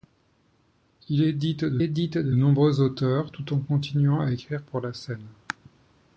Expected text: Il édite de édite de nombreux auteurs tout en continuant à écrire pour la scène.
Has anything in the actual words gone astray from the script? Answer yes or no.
no